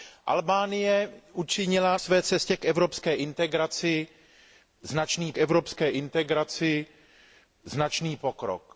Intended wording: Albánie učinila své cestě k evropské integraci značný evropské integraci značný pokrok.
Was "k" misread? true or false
false